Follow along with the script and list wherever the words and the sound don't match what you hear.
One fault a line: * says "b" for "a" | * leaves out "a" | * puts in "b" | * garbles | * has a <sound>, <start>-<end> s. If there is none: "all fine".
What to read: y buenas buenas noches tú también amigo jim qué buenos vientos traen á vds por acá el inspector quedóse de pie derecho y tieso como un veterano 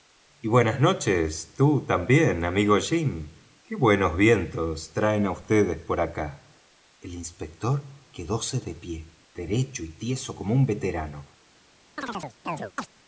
* leaves out "buenas"
* has a chirp, 12.0-12.9 s